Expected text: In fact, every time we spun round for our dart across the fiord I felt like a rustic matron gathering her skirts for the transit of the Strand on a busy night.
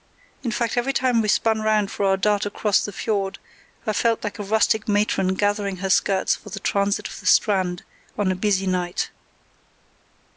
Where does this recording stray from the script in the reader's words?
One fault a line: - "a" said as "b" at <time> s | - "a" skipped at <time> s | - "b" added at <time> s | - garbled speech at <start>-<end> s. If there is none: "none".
none